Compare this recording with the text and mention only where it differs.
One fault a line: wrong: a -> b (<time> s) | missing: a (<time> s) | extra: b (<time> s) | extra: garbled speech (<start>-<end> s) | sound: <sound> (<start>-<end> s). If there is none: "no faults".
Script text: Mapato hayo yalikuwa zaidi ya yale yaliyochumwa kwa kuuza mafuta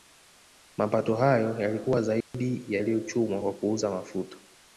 sound: dropout (2.2-2.3 s)
missing: yale (2.8 s)